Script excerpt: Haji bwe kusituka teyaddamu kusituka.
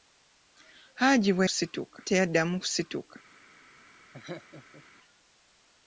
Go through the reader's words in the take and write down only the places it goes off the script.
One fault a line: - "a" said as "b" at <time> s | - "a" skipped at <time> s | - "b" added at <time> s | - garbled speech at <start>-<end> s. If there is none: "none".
none